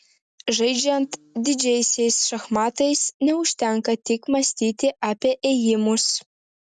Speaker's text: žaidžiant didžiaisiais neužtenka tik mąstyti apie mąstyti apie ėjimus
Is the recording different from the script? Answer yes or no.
yes